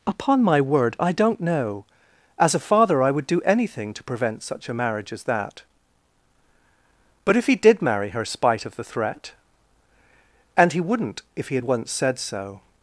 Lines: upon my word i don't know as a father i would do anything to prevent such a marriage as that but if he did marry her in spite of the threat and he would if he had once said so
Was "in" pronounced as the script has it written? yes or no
no